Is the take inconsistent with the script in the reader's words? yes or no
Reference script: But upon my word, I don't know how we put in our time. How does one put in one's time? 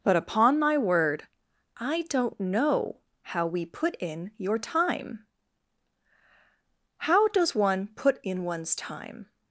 yes